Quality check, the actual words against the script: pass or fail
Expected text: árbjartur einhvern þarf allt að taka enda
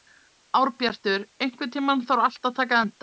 fail